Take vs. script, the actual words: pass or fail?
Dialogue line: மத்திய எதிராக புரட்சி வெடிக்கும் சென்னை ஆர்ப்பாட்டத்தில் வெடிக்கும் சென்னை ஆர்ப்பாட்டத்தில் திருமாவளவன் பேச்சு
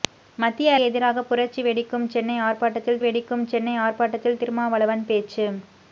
pass